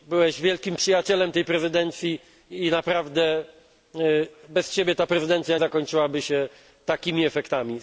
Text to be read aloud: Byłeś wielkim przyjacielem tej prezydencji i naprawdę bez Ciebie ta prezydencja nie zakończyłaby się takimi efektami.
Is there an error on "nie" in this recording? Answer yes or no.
yes